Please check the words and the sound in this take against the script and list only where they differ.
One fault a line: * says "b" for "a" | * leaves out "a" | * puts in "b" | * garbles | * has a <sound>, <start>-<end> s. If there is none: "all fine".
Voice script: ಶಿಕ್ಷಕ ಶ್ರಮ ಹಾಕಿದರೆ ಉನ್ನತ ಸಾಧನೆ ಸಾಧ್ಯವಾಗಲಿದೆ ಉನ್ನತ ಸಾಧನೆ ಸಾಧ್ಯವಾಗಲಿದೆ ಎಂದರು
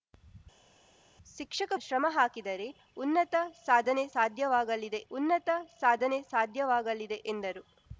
all fine